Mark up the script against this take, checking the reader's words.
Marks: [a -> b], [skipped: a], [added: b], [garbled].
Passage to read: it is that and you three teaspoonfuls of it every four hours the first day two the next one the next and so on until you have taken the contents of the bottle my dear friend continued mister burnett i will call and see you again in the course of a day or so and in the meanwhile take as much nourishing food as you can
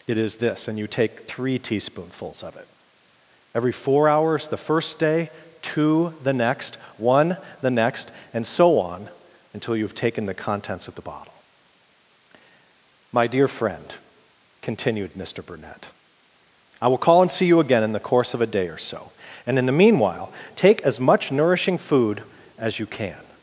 it is [that -> this] and you [added: take] three teaspoonfuls of it every four hours the first day two the next one the next and so on until you have taken the contents of the bottle my dear friend continued mister burnett i will call and see you again in the course of a day or so and in the meanwhile take as much nourishing food as you can